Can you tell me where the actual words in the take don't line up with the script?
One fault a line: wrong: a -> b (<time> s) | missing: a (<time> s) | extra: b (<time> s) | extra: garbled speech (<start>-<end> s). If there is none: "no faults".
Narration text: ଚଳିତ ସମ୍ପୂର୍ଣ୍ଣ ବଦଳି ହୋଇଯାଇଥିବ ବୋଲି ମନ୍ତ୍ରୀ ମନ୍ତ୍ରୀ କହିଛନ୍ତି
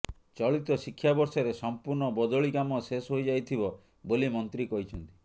extra: ଶିକ୍ଷାବର୍ଷରେ (0.8 s)
extra: କାମ ଶେଷ (2.5 s)
missing: ମନ୍ତ୍ରୀ (4.7 s)